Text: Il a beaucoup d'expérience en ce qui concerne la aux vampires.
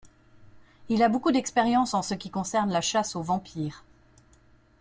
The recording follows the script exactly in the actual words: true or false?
false